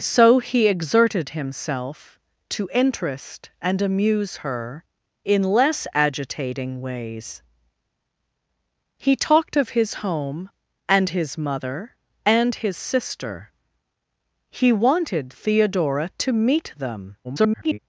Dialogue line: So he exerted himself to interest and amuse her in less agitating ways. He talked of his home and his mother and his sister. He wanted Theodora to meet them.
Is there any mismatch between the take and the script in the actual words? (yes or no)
yes